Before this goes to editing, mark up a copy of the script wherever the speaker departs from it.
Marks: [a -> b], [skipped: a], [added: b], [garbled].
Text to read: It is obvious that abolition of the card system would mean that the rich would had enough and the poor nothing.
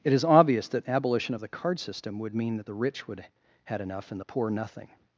It is obvious that abolition of the card system would mean that the rich would had enough and the poor nothing.